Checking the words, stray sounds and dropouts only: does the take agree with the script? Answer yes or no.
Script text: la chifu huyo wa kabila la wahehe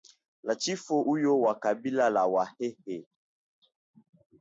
yes